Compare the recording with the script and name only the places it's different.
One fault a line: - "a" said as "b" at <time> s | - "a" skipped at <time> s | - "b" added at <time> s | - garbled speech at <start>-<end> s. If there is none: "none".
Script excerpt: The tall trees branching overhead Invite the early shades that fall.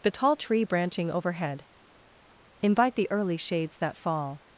- "trees" said as "tree" at 0.3 s